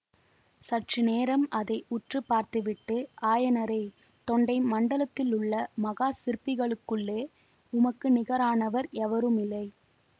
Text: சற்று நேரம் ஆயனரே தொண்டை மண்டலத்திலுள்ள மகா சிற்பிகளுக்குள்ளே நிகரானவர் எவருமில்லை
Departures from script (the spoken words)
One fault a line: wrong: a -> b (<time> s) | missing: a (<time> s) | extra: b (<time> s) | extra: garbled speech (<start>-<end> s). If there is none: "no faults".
extra: அதை உற்று பார்த்துவிட்டு (1.5 s)
extra: உமக்கு (7.7 s)